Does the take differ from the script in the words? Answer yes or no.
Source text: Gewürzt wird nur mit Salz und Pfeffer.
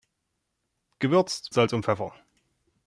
yes